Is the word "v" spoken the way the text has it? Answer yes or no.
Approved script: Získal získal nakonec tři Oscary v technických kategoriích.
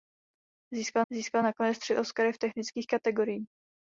yes